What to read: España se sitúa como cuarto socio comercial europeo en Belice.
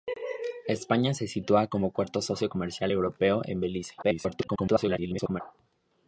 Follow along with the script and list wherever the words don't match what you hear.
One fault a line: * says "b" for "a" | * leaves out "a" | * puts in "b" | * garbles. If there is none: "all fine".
* garbles